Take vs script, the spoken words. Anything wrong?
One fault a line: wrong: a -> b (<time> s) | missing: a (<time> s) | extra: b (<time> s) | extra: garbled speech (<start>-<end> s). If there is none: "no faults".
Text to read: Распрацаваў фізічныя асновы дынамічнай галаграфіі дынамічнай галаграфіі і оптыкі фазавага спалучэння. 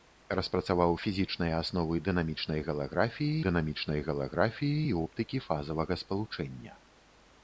no faults